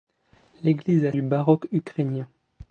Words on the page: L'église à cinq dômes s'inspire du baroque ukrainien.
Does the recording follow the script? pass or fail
fail